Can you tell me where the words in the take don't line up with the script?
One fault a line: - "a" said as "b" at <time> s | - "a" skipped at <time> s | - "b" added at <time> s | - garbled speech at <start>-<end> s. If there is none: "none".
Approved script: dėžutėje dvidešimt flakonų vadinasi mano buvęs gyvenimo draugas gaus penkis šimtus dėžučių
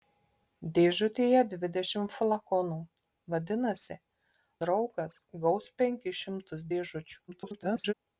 - "mano buvęs gyvenimo" skipped at 4.0 s
- garbled speech at 7.3-7.9 s